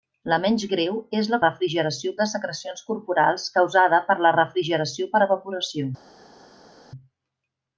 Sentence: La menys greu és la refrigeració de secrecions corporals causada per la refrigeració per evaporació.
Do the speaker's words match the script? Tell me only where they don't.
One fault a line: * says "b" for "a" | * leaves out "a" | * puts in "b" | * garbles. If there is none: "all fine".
all fine